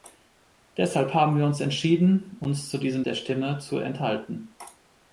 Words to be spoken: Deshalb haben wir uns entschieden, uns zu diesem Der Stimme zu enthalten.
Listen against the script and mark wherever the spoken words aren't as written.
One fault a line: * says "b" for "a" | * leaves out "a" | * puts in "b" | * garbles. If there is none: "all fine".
all fine